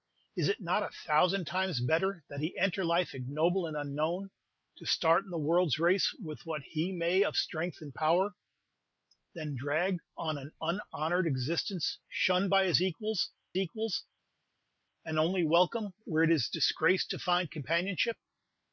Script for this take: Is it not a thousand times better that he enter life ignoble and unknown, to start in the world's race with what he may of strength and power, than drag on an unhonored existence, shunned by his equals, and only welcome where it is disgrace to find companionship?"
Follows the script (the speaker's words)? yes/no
no